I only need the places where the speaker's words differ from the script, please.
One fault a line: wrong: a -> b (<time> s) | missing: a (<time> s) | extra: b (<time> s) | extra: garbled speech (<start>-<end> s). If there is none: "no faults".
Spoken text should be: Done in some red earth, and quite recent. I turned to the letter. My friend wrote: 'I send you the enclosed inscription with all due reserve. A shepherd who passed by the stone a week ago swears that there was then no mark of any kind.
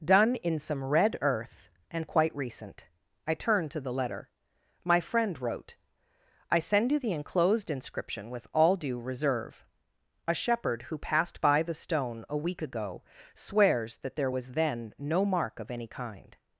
no faults